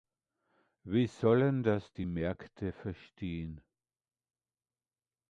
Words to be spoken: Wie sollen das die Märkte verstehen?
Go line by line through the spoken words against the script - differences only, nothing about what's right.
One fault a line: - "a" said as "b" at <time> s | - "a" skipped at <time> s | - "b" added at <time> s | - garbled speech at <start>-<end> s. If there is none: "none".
none